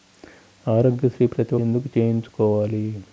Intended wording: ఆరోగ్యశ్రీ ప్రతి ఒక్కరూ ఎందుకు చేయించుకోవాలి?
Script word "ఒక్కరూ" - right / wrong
wrong